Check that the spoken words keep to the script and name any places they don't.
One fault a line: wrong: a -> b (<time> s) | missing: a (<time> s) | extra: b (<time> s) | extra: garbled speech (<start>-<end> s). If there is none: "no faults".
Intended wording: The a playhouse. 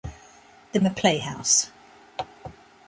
no faults